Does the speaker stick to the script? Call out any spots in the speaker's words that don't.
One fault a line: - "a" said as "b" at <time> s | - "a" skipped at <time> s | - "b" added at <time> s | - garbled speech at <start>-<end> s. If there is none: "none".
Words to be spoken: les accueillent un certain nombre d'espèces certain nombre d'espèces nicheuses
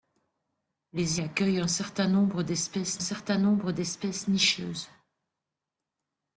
none